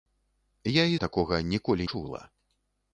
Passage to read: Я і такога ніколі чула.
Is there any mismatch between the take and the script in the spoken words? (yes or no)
no